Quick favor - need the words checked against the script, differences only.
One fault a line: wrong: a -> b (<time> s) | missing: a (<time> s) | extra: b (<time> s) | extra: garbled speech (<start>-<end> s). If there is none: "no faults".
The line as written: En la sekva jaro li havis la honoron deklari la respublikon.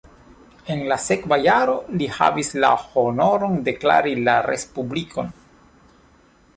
no faults